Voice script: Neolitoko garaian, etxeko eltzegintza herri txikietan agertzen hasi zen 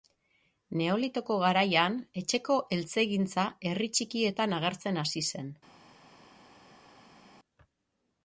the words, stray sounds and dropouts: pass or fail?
pass